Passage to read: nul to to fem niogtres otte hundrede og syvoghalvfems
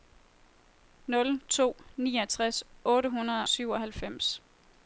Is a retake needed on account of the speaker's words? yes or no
yes